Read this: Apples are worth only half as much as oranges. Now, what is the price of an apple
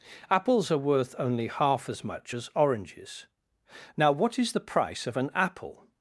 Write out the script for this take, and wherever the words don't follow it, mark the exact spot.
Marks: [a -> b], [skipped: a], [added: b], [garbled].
Apples are worth only half as much as oranges. Now, what is the price of an apple